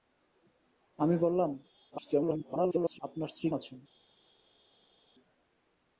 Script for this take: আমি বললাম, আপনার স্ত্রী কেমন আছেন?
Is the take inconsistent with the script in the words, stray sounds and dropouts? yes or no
yes